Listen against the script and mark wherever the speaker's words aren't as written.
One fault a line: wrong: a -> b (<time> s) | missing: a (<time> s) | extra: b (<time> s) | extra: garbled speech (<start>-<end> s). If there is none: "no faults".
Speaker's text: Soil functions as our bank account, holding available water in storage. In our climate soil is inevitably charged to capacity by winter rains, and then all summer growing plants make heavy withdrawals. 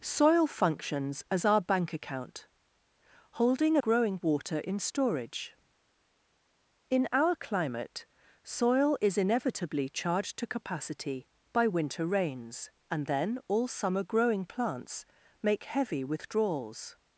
wrong: available -> growing (3.8 s)